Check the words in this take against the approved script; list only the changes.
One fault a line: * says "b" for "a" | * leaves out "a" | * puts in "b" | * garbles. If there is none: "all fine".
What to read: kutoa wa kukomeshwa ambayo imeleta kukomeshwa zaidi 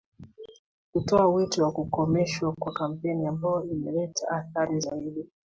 * puts in "wito"
* puts in "kwa kampeni"
* says "athari" for "kukomeshwa"